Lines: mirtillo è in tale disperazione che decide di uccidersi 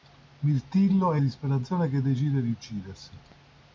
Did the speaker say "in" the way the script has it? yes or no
no